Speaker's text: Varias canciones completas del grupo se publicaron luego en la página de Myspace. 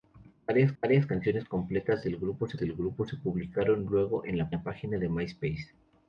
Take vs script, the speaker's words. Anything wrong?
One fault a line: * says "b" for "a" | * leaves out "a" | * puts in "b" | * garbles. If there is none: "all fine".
* puts in "varias"
* puts in "del grupo se"
* puts in "la"